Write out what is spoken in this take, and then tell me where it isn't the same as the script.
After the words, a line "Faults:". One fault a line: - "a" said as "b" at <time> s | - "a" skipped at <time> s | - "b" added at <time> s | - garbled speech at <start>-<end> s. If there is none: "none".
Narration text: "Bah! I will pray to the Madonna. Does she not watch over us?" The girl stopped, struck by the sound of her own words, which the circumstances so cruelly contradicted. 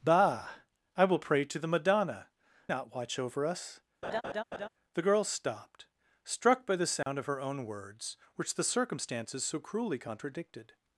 "Bah! I will pray to the Madonna. Not watch over us?" The girl stopped, struck by the sound of her own words, which the circumstances so cruelly contradicted.
Faults:
- "Does she" skipped at 2.3 s